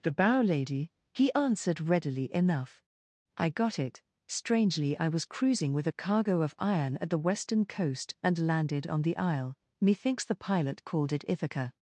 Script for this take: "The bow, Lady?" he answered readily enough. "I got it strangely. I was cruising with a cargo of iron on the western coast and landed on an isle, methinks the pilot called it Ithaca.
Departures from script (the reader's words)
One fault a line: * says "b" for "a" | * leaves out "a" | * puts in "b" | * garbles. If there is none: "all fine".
* says "at" for "on"
* says "the" for "an"